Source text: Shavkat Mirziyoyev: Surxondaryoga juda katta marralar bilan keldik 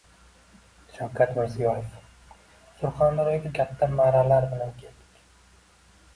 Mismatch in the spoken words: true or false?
true